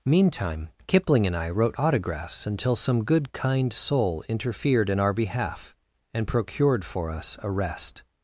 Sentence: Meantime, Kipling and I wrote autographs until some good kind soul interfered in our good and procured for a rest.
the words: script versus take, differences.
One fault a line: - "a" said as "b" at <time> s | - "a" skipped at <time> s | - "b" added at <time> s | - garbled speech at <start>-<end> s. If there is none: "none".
- "good" said as "behalf" at 5.1 s
- "us" added at 7.1 s